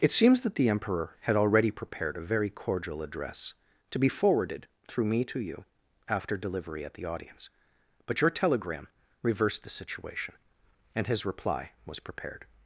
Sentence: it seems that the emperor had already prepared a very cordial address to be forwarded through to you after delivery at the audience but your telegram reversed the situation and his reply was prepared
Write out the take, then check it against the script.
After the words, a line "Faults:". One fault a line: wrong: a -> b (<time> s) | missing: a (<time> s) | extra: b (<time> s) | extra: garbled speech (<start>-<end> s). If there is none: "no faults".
it seems that the emperor had already prepared a very cordial address to be forwarded through me to you after delivery at the audience but your telegram reversed the situation and his reply was prepared
Faults:
extra: me (5.0 s)